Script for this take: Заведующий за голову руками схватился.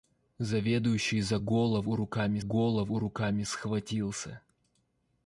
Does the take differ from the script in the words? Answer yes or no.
yes